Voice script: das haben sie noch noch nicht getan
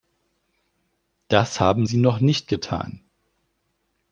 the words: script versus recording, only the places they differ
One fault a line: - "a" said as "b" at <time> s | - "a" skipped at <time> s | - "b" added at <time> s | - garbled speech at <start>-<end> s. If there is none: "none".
- "noch" skipped at 2.2 s